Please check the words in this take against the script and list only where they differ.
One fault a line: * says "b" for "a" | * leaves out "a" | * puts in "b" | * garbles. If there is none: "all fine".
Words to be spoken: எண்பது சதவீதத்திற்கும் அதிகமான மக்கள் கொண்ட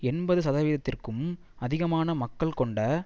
all fine